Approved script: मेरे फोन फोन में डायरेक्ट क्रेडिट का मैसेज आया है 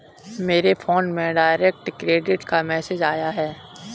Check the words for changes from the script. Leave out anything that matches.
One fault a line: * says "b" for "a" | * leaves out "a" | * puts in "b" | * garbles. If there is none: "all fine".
* leaves out "फोन"